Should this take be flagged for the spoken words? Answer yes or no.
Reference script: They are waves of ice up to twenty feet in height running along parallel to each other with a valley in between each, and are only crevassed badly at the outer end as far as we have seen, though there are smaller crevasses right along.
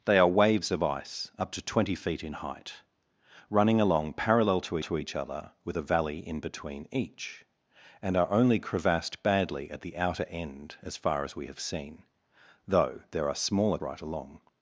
yes